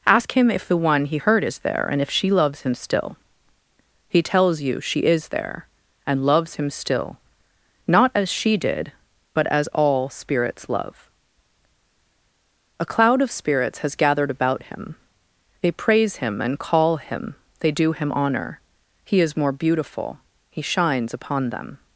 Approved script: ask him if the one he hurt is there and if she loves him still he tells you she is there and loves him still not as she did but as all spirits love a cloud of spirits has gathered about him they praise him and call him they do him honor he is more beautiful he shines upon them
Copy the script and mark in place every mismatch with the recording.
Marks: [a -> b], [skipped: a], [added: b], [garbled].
ask him if the one he hurt is there and if she loves him still he tells you she is there and loves him still not as she did but as all spirits love a cloud of spirits has gathered about him they praise him and call him they do him honor he is more beautiful he shines upon them